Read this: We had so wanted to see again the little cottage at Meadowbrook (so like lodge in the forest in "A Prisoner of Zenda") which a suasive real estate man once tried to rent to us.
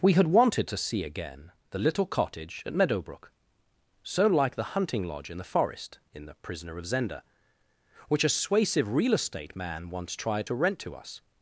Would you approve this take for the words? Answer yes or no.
no